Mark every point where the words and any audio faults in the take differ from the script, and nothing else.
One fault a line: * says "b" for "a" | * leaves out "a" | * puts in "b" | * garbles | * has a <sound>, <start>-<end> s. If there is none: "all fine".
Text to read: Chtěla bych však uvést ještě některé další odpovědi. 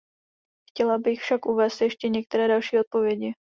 all fine